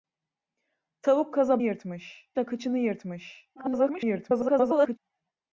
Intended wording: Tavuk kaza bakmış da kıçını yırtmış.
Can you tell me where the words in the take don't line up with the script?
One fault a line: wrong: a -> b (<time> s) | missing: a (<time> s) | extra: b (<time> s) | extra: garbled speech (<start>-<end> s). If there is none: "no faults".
wrong: bakmış -> yırtmış (1.6 s)
extra: garbled speech (3.6-5.0 s)